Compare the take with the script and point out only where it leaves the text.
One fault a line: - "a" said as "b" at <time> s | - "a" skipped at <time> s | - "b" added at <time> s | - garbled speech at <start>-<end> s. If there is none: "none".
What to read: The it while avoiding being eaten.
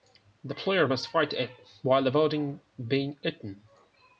- "player must fight" added at 0.6 s